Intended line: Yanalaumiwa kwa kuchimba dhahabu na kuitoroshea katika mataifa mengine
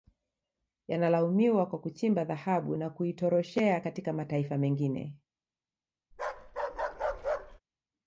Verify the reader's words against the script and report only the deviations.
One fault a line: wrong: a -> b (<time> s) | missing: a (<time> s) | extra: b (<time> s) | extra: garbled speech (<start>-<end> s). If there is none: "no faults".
no faults